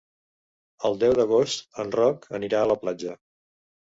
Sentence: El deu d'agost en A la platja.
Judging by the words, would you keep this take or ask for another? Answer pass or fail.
fail